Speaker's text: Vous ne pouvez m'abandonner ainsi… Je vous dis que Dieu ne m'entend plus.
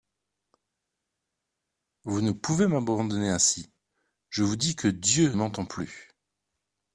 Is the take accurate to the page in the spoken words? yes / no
no